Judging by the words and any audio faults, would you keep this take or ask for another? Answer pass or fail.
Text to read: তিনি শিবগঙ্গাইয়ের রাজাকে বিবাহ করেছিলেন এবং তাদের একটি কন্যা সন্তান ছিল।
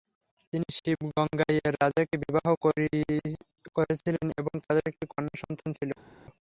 pass